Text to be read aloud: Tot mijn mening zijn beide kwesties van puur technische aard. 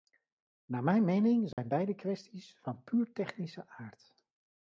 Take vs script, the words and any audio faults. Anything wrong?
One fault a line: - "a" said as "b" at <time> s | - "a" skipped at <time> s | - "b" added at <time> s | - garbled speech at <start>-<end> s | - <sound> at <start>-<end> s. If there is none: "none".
- "Tot" said as "Naar" at 0.7 s
- dropout at 1.5-1.6 s